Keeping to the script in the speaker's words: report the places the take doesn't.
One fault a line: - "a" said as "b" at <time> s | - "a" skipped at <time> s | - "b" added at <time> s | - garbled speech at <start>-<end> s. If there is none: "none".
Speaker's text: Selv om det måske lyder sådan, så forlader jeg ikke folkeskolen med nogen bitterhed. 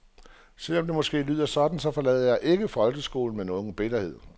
none